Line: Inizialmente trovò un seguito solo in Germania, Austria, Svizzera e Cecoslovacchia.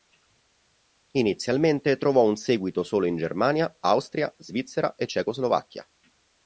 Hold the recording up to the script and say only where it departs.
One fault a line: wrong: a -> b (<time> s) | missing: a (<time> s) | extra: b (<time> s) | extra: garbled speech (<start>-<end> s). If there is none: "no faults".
no faults